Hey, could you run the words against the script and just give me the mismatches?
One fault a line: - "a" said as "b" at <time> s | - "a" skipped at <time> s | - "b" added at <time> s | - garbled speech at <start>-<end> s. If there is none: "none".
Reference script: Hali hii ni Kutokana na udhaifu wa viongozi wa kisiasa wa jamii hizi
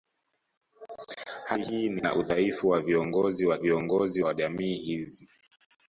- "Kutokana" skipped at 2.0 s
- "kisiasa" said as "viongozi" at 3.6 s